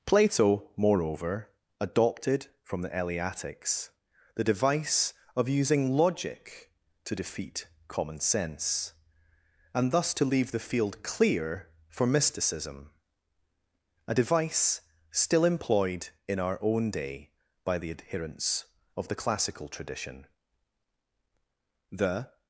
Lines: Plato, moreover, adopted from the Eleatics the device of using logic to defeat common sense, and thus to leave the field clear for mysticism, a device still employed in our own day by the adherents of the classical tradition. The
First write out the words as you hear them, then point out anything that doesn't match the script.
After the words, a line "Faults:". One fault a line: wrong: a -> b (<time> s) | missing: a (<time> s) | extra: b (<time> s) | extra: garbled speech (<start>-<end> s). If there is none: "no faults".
Plato, moreover, adopted from the Eleatics the device of using logic to defeat common sense, and thus to leave the field clear for mysticism, a device still employed in our own day by the adherents of the classical tradition. The
Faults:
no faults